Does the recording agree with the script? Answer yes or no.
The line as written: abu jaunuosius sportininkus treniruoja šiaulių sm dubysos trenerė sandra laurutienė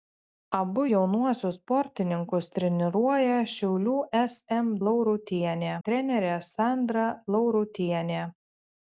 no